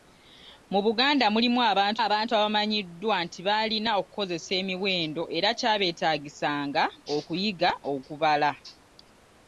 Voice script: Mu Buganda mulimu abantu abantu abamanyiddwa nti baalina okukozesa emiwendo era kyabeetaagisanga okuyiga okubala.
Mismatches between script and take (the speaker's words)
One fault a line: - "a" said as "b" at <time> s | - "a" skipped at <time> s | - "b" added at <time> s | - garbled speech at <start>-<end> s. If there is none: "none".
none